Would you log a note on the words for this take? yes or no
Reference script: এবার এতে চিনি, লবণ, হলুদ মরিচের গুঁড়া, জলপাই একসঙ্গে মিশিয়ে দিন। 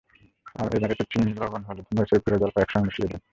no